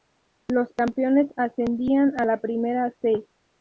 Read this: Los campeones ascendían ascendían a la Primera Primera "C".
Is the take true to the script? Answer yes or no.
no